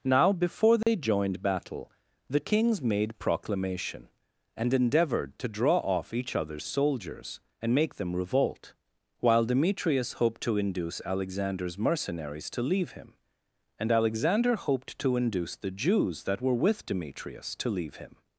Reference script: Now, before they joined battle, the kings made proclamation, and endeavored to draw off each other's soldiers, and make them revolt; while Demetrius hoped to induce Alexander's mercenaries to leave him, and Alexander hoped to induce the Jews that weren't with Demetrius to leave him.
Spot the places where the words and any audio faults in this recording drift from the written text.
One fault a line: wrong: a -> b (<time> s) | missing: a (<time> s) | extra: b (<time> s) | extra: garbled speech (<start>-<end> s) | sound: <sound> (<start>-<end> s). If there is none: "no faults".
sound: dropout (0.8-0.9 s)
wrong: weren't -> were (16.4 s)